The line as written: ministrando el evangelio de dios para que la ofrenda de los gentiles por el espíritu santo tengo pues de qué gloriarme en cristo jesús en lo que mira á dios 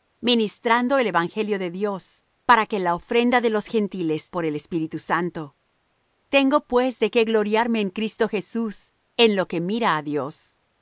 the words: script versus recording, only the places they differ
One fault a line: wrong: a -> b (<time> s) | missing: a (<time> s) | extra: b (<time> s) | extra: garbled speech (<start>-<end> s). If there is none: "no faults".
no faults